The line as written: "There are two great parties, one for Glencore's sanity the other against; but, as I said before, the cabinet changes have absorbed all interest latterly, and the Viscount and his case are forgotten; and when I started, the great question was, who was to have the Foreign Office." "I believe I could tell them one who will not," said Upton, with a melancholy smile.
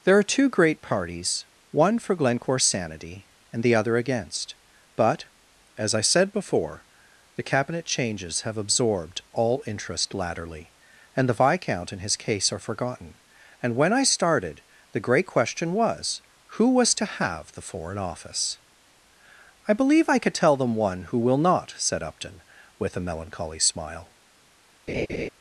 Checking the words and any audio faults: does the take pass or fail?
fail